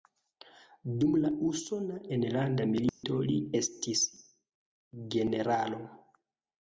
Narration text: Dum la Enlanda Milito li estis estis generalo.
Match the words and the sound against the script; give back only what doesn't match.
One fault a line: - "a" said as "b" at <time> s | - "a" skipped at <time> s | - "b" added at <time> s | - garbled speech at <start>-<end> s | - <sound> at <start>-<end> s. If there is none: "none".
- "Usona" added at 1.5 s
- dropout at 2.9-3.0 s
- "estis" skipped at 4.0 s